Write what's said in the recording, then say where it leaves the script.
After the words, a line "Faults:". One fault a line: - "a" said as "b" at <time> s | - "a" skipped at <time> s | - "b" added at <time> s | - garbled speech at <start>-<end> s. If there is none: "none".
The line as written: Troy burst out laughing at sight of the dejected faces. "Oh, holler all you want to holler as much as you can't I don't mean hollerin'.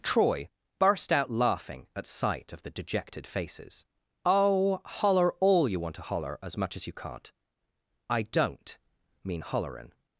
Troy burst out laughing at sight of the dejected faces. "Oh, holler all you want to holler as much as you can't I don't mean hollerin'.
Faults:
none